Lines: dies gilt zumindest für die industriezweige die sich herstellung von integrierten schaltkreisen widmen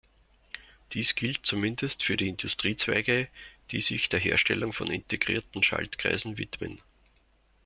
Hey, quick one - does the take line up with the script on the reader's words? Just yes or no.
no